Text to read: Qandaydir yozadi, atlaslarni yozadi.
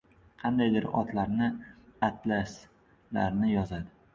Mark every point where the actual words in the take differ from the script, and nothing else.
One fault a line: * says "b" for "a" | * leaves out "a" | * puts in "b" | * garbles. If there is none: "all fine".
* says "otlarni" for "yozadi"